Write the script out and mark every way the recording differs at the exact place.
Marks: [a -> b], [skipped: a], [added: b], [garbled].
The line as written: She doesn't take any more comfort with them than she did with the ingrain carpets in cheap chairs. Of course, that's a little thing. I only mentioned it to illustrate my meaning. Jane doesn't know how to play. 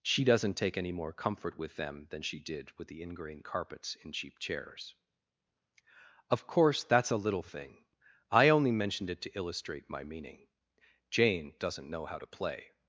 She doesn't take any more comfort with them than she did with the ingrain carpets in cheap chairs. Of course, that's a little thing. I only mentioned it to illustrate my meaning. Jane doesn't know how to play.